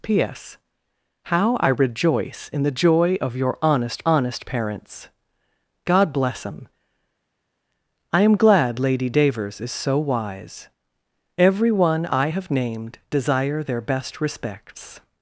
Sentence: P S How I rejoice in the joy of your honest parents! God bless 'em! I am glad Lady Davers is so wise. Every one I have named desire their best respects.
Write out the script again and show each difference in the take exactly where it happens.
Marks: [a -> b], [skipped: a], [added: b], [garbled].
P S How I rejoice in the joy of your honest [added: honest] parents! God bless 'em! I am glad Lady Davers is so wise. Every one I have named desire their best respects.